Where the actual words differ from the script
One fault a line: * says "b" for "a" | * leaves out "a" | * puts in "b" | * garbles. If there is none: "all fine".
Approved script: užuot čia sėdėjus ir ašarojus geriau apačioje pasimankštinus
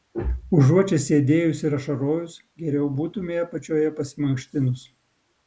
* puts in "būtumei"